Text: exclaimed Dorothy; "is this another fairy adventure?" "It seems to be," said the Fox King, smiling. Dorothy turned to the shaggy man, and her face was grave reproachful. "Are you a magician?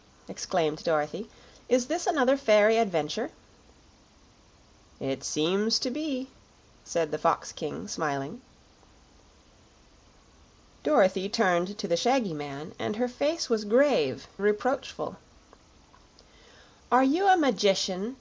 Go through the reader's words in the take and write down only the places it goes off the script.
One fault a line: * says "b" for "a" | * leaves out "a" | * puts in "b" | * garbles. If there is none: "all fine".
all fine